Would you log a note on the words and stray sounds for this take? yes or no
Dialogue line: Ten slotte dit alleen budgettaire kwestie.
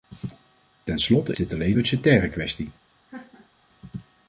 yes